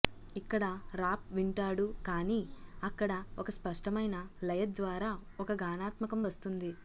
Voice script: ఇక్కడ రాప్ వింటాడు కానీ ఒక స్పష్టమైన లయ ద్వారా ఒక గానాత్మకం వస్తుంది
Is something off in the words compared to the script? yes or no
yes